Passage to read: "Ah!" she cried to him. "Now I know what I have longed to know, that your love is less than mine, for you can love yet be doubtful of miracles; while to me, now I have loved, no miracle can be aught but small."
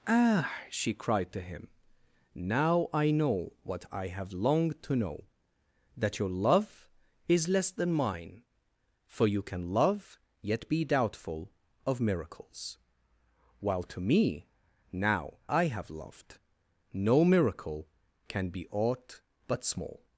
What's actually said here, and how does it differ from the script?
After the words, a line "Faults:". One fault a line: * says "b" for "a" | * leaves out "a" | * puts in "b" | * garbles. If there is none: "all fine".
"Ah!" she cried to him. "Now I know what I have longed to know, that your love is less than mine, for you can love yet be doubtful of miracles; while to me, now I have loved, no miracle can be aught but small."
Faults:
all fine